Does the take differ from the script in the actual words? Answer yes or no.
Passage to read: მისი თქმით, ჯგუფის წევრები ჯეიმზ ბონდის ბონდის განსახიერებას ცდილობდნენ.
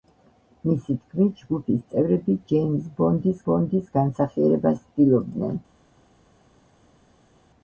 no